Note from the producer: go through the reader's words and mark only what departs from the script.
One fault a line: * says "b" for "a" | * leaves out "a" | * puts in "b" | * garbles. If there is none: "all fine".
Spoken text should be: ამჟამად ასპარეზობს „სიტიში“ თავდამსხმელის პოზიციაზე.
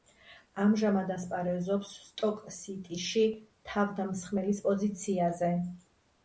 * puts in "სტოკ"